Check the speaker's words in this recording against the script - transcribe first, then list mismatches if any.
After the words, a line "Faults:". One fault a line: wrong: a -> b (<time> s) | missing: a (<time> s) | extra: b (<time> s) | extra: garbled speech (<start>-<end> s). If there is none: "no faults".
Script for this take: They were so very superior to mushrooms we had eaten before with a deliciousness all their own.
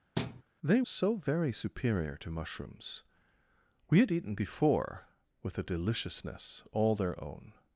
They so very superior to mushrooms we had eaten before with a deliciousness all their own.
Faults:
missing: were (0.8 s)